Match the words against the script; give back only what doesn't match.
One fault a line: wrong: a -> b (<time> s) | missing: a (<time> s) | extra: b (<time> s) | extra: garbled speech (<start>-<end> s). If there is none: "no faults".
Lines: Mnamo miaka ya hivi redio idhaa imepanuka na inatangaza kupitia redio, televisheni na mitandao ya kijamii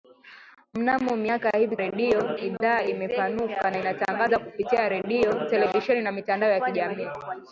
no faults